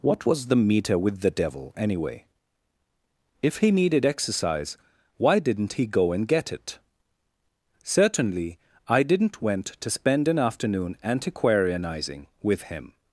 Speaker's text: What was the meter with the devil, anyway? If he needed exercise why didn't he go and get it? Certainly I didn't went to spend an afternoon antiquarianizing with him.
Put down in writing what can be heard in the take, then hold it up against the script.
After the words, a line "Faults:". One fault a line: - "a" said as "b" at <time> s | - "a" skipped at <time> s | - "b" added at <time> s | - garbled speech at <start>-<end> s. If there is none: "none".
What was the meter with the devil, anyway? If he needed exercise why didn't he go and get it? Certainly I didn't went to spend an afternoon antiquarianizing with him.
Faults:
none